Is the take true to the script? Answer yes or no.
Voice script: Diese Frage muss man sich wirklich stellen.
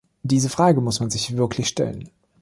yes